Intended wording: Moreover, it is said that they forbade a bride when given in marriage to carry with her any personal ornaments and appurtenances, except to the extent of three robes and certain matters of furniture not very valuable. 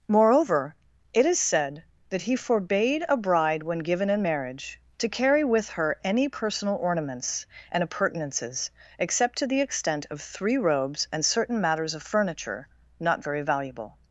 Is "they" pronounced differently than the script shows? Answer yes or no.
yes